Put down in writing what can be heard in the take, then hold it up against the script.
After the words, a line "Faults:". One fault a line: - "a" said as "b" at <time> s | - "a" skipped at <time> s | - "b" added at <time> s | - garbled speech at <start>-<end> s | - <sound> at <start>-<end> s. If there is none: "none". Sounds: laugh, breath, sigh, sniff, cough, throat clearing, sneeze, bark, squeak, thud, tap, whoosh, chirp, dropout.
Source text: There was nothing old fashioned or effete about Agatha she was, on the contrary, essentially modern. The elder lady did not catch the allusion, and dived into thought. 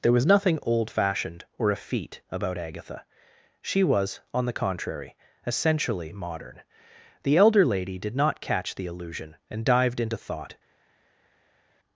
There was nothing old fashioned or effete about Agatha she was, on the contrary, essentially modern. The elder lady did not catch the allusion, and dived into thought.
Faults:
none